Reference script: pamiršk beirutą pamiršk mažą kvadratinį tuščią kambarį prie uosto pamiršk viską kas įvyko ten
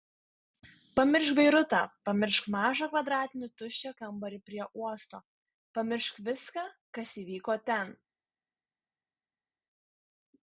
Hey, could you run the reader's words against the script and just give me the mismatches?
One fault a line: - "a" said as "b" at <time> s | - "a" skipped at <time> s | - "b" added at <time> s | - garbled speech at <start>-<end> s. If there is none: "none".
none